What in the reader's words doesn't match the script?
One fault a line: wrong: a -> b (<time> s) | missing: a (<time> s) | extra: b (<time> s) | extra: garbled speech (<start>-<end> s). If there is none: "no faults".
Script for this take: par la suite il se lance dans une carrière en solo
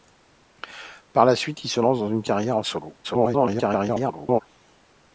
extra: garbled speech (3.0-4.4 s)